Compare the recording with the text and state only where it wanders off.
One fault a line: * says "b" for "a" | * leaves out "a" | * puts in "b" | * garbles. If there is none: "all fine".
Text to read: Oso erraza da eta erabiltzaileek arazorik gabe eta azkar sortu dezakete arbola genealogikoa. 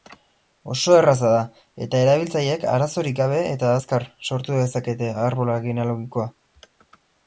all fine